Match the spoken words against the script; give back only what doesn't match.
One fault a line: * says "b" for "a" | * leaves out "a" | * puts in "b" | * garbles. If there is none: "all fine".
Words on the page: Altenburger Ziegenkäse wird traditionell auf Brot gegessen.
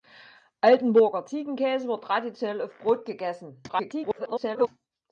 * garbles